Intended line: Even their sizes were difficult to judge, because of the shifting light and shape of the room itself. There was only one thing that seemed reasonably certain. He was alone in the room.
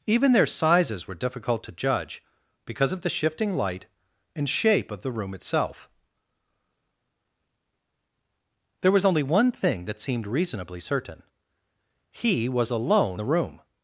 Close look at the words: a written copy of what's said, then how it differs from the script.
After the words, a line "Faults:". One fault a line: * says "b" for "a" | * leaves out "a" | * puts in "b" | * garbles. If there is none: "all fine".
Even their sizes were difficult to judge, because of the shifting light and shape of the room itself. There was only one thing that seemed reasonably certain. He was alone the room.
Faults:
* leaves out "in"